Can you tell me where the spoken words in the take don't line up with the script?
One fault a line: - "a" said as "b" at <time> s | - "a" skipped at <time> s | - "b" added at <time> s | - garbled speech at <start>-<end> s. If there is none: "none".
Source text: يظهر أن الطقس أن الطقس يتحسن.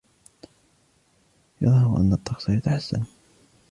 - "أن الطقس" skipped at 2.5 s